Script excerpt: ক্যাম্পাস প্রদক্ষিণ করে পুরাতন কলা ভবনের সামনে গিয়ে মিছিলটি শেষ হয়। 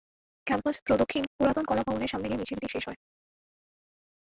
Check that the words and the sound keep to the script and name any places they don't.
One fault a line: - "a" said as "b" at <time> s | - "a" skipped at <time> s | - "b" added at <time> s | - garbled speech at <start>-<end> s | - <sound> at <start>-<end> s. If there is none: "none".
- "করে" skipped at 1.2 s